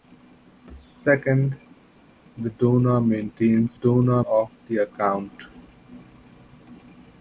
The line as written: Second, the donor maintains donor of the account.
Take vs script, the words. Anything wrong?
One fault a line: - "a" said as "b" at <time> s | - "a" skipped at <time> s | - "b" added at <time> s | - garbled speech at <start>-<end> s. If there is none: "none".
none